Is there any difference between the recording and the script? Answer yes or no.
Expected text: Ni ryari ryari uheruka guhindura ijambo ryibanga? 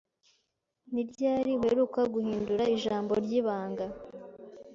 yes